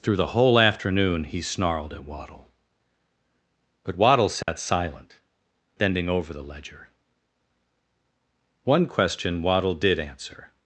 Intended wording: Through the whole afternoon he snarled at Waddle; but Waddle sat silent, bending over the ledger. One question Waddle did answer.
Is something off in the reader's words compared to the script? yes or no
no